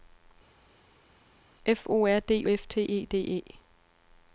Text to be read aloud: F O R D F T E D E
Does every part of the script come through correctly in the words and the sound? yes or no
yes